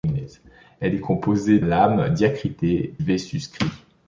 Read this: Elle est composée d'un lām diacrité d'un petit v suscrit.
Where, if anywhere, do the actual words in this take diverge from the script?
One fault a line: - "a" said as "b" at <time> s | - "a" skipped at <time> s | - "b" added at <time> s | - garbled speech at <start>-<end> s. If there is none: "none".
- "d'un" skipped at 1.6 s
- "d'un petit" skipped at 2.9 s